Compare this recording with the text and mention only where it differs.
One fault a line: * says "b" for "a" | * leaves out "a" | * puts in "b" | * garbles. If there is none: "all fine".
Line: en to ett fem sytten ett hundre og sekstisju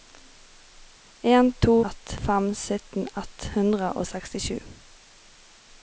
all fine